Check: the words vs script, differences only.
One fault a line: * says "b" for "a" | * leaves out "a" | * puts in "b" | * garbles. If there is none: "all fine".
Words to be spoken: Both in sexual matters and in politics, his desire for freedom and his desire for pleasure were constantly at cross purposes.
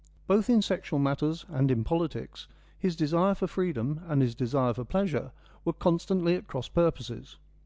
all fine